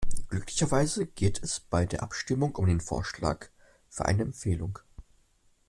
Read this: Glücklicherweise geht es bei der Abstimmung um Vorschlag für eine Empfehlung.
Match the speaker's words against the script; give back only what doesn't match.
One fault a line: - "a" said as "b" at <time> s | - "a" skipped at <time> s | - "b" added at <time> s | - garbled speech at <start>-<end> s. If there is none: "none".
- "den" added at 2.7 s